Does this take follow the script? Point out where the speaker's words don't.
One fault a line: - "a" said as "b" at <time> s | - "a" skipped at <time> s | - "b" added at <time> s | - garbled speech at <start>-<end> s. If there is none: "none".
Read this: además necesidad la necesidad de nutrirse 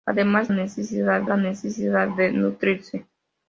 none